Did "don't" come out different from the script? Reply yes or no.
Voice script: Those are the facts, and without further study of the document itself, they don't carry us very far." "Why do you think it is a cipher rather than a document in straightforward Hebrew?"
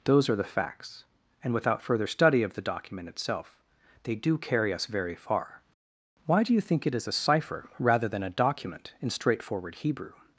yes